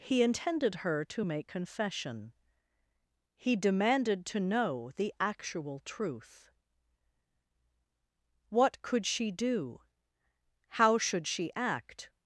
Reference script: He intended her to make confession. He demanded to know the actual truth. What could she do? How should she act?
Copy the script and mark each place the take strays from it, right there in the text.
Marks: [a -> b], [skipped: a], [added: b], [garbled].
He intended her to make confession. He demanded to know the actual truth. What could she do? How should she act?